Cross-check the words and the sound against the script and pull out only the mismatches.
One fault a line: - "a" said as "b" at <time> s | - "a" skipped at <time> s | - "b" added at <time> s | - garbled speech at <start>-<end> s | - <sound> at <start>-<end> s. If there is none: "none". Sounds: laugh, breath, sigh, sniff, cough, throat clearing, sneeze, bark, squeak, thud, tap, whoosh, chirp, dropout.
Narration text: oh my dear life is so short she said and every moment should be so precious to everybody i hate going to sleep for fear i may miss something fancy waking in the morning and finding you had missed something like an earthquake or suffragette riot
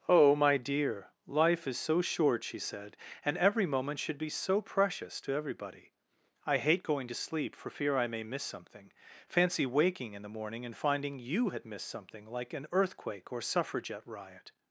none